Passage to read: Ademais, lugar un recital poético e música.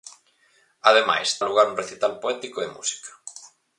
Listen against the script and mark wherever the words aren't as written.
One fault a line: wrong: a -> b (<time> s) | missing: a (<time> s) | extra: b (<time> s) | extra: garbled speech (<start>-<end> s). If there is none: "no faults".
no faults